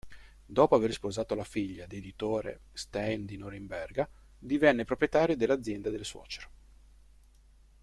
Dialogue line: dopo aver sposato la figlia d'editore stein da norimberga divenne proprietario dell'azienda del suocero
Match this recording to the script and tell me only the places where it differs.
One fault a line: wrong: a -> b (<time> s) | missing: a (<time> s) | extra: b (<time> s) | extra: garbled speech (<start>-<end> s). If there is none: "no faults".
wrong: da -> di (3.2 s)